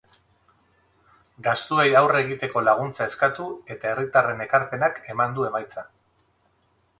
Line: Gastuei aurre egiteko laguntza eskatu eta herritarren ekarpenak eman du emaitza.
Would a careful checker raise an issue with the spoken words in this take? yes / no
no